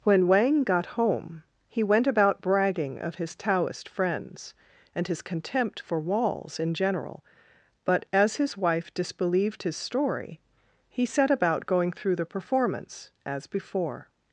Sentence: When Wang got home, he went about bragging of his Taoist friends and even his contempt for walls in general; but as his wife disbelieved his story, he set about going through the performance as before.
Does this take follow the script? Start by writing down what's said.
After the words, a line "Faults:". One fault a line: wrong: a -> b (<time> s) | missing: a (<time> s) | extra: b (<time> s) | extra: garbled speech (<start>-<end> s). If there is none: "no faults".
When Wang got home, he went about bragging of his Taoist friends and his contempt for walls in general; but as his wife disbelieved his story, he set about going through the performance as before.
Faults:
missing: even (5.1 s)